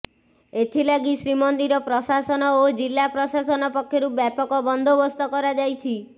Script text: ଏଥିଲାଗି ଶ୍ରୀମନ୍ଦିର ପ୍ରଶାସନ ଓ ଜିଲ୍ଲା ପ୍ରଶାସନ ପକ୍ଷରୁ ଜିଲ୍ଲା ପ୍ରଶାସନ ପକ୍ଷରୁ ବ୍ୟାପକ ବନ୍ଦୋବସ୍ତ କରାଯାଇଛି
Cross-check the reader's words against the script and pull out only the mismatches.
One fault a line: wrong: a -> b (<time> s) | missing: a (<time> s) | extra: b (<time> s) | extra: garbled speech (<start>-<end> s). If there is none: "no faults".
missing: ଜିଲ୍ଲା ପ୍ରଶାସନ ପକ୍ଷରୁ (4.1 s)